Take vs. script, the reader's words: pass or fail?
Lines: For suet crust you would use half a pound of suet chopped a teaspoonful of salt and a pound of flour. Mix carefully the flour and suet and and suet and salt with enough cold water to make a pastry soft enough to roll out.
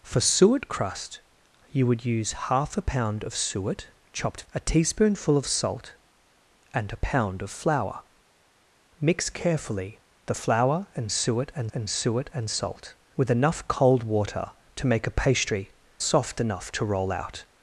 pass